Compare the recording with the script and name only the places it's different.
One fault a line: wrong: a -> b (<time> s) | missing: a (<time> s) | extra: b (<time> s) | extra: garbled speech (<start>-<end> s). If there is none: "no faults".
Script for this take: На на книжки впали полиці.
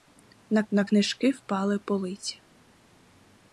no faults